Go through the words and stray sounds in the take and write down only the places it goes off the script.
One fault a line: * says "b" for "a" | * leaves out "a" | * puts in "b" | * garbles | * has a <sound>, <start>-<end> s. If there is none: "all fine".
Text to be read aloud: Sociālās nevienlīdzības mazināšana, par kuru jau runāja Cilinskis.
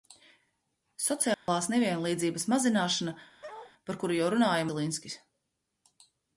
* has a dropout, 1.3-1.5 s
* has a bark, 3.4-3.7 s